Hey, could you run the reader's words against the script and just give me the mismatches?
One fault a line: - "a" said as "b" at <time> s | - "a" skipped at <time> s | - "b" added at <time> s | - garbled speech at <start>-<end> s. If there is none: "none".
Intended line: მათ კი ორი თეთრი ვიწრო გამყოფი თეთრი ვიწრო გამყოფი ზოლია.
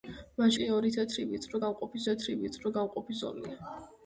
none